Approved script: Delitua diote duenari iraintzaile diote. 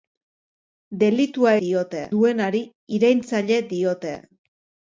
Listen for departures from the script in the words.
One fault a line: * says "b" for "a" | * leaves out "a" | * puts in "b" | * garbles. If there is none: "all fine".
all fine